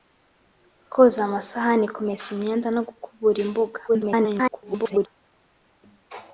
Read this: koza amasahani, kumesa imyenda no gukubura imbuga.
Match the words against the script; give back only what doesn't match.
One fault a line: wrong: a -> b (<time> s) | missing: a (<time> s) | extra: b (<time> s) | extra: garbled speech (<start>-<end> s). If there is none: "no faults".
extra: garbled speech (3.9-5.1 s)